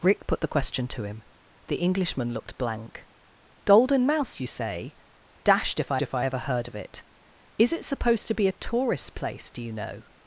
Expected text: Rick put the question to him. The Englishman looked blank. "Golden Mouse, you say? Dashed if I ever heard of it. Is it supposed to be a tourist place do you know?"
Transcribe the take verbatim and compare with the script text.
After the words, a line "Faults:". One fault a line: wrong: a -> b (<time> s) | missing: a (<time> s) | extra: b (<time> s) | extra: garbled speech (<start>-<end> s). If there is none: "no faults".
Rick put the question to him. The Englishman looked blank. "Golden Mouse, you say? Dashed if I if I ever heard of it. Is it supposed to be a tourist place do you know?"
Faults:
extra: if I (6.0 s)